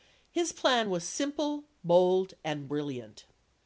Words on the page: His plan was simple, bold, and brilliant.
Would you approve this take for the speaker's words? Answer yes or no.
yes